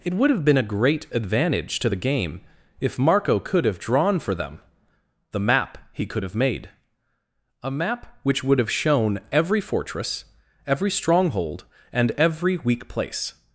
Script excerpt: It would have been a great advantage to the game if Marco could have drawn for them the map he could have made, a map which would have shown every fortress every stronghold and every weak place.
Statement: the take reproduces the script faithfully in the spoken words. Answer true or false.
true